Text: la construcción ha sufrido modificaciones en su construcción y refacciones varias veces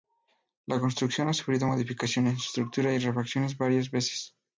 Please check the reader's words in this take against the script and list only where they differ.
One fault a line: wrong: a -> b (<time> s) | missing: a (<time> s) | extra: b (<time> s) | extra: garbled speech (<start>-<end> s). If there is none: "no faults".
wrong: construcción -> estructura (2.5 s)